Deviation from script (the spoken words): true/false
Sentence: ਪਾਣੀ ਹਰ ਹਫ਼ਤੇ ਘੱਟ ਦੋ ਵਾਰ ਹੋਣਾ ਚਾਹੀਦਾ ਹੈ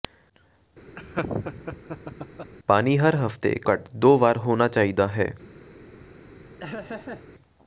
false